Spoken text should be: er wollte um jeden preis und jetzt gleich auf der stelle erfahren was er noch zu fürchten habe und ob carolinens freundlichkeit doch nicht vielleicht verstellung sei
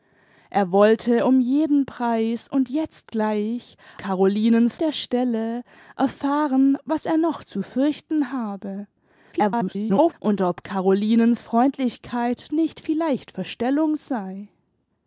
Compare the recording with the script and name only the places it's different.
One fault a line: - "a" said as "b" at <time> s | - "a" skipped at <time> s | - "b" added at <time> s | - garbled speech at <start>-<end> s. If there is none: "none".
- "auf" said as "carolinens" at 4.0 s
- garbled speech at 9.3-10.1 s
- "doch" skipped at 12.5 s